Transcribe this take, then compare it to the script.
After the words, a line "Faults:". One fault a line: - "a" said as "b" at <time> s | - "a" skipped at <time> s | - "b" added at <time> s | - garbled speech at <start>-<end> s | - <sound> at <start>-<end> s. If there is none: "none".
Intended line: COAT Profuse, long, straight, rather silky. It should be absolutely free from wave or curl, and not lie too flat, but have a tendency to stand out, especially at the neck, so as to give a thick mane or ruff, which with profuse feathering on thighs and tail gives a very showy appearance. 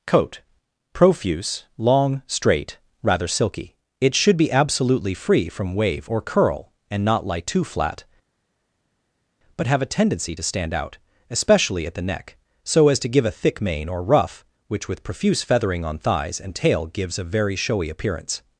COAT Profuse, long, straight, rather silky. It should be absolutely free from wave or curl, and not lie too flat, but have a tendency to stand out, especially at the neck, so as to give a thick mane or ruff, which with profuse feathering on thighs and tail gives a very showy appearance.
Faults:
none